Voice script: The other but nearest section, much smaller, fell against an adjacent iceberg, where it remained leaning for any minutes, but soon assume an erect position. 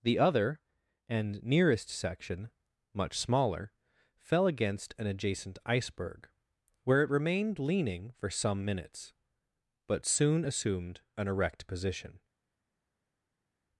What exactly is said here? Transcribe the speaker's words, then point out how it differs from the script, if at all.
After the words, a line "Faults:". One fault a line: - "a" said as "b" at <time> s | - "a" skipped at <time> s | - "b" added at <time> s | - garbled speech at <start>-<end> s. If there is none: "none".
The other and nearest section, much smaller, fell against an adjacent iceberg, where it remained leaning for some minutes, but soon assumed an erect position.
Faults:
- "but" said as "and" at 1.1 s
- "any" said as "some" at 8.3 s
- "assume" said as "assumed" at 10.4 s